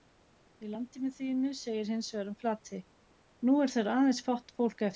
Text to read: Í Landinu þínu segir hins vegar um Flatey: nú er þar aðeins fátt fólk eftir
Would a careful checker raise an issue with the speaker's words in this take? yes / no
no